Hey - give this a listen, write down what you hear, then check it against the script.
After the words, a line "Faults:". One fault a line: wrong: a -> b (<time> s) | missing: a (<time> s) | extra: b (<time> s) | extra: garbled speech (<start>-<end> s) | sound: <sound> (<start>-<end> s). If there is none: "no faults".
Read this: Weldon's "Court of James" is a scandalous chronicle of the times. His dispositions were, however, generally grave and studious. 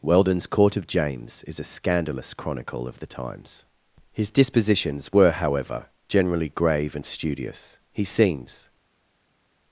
Weldon's "Court of James" is a scandalous chronicle of the times. His dispositions were, however, generally grave and studious. He seems
Faults:
extra: He seems (7.9 s)